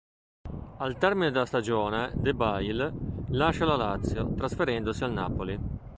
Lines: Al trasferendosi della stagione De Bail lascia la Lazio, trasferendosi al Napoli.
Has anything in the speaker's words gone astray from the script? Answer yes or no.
yes